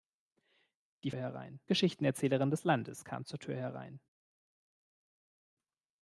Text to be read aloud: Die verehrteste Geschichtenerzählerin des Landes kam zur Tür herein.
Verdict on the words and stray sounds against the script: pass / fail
fail